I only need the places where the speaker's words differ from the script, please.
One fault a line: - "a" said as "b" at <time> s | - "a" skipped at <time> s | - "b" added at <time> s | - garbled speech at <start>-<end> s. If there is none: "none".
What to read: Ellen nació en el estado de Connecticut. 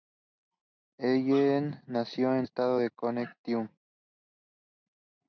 - "el" skipped at 2.5 s